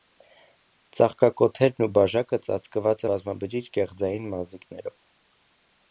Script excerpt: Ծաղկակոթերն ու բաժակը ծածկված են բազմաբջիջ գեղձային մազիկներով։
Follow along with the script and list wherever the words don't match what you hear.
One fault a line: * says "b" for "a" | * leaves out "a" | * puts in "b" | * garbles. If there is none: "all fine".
* leaves out "են"